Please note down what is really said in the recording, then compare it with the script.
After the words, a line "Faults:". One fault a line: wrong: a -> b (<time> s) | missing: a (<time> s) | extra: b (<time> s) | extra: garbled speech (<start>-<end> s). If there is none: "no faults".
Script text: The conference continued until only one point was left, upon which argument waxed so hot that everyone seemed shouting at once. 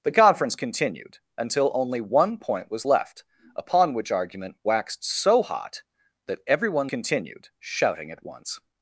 The conference continued until only one point was left, upon which argument waxed so hot that everyone continued shouting at once.
Faults:
wrong: seemed -> continued (6.9 s)